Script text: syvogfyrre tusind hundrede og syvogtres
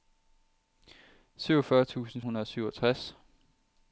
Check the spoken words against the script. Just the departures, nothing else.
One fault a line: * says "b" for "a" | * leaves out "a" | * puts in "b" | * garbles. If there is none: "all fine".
all fine